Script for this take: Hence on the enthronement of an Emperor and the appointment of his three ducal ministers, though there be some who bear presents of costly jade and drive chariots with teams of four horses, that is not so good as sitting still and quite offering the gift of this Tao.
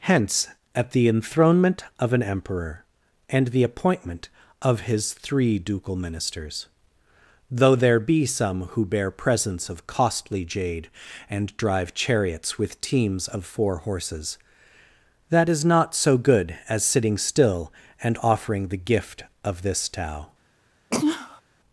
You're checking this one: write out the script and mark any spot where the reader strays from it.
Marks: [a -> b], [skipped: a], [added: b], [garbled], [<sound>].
Hence [on -> at] the enthronement of an Emperor and the appointment of his three ducal ministers, though there be some who bear presents of costly jade and drive chariots with teams of four horses, that is not so good as sitting still and [skipped: quite] offering the gift of this Tao. [sneeze]